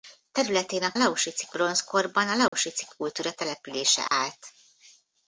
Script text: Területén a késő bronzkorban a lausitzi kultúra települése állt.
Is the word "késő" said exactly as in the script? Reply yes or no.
no